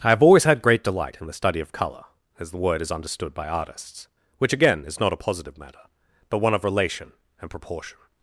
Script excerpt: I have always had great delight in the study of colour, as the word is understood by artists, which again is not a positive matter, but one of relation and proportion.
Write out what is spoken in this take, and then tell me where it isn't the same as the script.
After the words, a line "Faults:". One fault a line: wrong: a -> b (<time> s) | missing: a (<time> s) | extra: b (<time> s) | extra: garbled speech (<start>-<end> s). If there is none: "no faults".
I have always had great delight in the study of colour, as the word is understood by artists, which again is not a positive matter, but one of relation and proportion.
Faults:
no faults